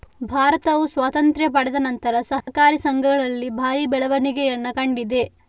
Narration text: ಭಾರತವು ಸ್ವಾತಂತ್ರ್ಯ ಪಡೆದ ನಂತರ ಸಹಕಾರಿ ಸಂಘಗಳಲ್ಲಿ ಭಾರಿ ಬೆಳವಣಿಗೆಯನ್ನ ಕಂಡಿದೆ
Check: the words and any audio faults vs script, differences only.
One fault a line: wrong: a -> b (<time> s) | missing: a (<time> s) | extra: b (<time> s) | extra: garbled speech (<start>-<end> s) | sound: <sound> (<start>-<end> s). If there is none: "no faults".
sound: dropout (2.4-2.5 s)